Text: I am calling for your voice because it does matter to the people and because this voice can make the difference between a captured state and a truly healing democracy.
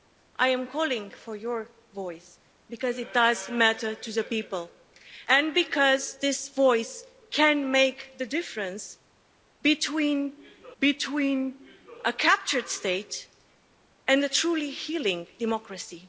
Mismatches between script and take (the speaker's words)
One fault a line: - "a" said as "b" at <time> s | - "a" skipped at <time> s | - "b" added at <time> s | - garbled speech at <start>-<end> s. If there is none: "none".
- "between" added at 10.8 s